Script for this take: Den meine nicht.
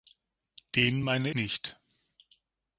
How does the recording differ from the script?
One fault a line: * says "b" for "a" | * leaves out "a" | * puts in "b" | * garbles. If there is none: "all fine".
all fine